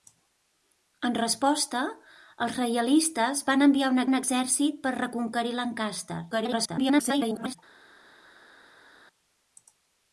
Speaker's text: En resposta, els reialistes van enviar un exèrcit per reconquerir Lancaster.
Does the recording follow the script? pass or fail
fail